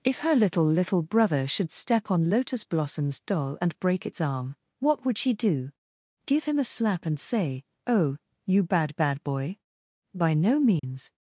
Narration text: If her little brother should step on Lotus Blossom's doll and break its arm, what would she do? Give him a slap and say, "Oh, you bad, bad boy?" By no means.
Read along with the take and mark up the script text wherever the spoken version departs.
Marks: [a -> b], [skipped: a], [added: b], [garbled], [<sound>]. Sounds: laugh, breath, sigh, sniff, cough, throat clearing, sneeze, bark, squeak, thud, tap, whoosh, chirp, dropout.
If her little [added: little] brother should step on Lotus Blossom's doll and break its arm, what would she do? Give him a slap and say, "Oh, you bad, bad boy?" By no means. [dropout]